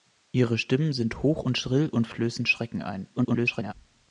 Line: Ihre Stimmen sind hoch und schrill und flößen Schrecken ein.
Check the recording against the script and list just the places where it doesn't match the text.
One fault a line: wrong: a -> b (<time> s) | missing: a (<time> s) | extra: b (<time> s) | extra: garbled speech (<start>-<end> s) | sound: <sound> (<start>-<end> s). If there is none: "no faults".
extra: garbled speech (3.2-3.7 s)